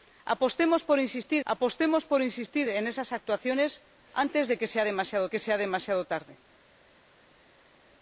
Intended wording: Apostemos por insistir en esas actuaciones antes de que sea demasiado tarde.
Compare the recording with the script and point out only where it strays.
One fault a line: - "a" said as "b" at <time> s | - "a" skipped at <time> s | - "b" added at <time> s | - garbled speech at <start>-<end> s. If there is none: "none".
- "apostemos por insistir" added at 1.4 s
- "que sea demasiado" added at 5.3 s